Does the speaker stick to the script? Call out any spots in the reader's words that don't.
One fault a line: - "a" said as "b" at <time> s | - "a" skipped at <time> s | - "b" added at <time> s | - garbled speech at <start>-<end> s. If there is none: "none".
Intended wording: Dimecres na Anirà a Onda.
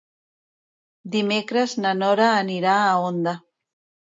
- "Nora" added at 2.0 s